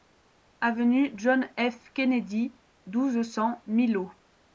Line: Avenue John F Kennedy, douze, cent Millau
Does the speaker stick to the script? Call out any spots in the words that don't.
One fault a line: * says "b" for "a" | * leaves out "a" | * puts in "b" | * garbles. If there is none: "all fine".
all fine